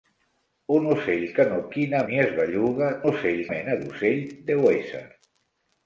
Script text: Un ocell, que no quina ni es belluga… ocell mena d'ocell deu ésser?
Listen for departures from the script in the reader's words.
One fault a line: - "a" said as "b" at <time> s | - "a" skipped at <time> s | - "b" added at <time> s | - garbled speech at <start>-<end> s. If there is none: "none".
none